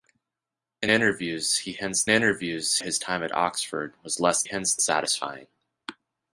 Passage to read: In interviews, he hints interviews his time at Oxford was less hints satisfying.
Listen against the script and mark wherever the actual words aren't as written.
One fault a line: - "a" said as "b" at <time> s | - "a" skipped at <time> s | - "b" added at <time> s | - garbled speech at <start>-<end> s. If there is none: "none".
none